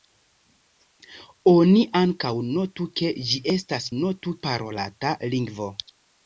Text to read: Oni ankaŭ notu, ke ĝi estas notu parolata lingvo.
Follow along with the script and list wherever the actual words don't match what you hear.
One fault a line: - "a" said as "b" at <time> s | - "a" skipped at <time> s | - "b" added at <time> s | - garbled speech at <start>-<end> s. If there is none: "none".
none